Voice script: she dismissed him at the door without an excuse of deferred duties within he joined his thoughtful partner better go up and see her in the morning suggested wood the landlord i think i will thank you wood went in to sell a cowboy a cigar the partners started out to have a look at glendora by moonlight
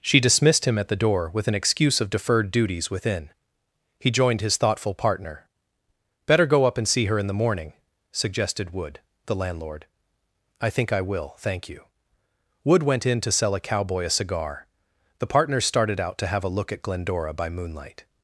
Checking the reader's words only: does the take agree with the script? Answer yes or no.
no